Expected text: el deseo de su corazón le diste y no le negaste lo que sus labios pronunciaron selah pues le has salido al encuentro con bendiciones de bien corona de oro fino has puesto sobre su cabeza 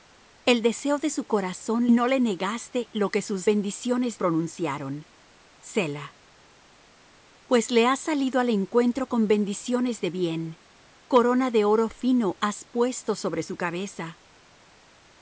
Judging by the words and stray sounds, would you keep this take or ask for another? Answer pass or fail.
fail